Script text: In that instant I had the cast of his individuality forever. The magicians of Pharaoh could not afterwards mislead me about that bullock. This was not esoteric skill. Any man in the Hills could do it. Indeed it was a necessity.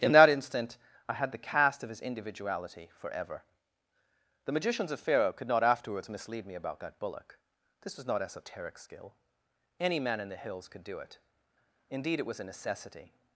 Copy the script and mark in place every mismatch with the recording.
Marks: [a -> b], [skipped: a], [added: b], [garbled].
In that instant I had the cast of his individuality forever. The magicians of Pharaoh could not afterwards mislead me about that bullock. This was not esoteric skill. Any man in the Hills could do it. Indeed it was a necessity.